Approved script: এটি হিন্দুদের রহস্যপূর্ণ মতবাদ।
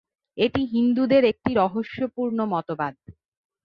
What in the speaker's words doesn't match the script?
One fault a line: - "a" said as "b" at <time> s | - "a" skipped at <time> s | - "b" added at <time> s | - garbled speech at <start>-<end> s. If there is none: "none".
- "একটি" added at 1.3 s